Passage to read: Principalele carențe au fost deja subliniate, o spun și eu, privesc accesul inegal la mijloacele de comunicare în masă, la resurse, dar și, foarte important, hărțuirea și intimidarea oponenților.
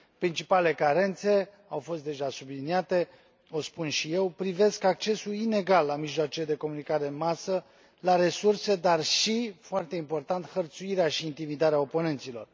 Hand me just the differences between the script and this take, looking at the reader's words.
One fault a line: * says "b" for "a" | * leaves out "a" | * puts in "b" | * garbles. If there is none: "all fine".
all fine